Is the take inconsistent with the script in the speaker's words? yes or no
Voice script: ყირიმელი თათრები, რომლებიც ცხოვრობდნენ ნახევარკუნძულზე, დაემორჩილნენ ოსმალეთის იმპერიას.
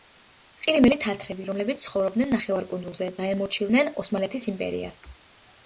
no